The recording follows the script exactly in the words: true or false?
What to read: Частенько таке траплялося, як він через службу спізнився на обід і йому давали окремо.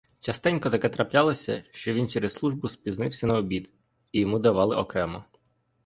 false